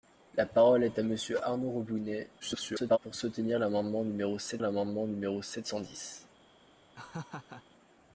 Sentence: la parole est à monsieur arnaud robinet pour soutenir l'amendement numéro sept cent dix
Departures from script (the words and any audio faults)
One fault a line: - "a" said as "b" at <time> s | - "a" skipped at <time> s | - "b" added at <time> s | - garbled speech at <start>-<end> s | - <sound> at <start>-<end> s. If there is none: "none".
- garbled speech at 2.4-3.0 s
- "l'amendement numéro sept" added at 4.6 s
- laugh at 6.9-7.6 s